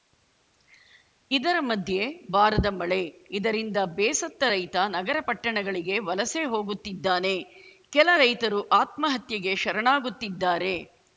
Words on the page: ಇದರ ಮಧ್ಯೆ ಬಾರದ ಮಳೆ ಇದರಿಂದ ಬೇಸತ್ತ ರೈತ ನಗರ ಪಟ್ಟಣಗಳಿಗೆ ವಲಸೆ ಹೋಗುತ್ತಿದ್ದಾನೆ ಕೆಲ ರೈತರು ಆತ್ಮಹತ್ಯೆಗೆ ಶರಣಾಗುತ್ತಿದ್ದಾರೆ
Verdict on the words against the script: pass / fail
pass